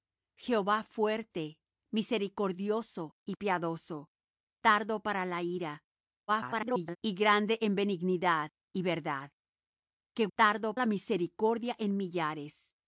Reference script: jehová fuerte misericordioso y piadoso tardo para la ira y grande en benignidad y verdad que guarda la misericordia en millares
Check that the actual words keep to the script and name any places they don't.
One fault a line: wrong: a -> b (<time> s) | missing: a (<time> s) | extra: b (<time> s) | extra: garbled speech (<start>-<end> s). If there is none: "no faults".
extra: garbled speech (6.3-7.0 s)
wrong: guarda -> tardo (10.4 s)